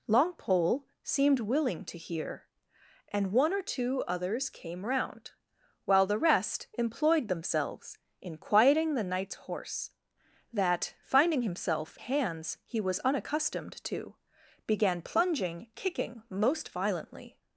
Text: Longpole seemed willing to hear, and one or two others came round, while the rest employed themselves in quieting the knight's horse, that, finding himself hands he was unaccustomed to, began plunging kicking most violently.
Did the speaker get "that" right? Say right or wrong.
right